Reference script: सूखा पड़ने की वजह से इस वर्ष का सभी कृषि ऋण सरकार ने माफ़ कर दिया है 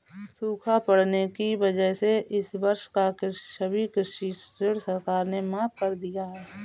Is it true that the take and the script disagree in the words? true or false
false